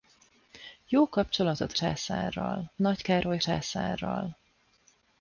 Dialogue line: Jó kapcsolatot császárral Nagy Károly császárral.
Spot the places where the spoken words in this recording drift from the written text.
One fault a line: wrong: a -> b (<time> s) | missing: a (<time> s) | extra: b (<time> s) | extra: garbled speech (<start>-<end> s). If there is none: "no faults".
no faults